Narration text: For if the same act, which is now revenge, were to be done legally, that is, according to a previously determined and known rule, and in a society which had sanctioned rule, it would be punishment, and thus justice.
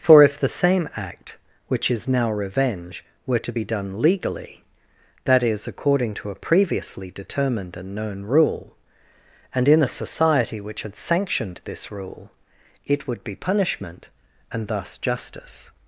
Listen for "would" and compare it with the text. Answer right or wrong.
right